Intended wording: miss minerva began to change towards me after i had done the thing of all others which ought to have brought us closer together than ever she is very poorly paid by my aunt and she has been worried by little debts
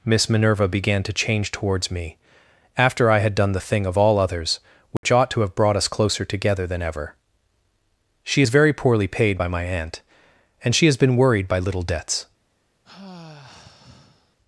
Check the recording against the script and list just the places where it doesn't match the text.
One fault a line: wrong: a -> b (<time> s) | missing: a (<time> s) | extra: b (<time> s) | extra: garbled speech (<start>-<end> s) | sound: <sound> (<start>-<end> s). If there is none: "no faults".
sound: dropout (5.0-5.0 s)
sound: sigh (12.8-14.4 s)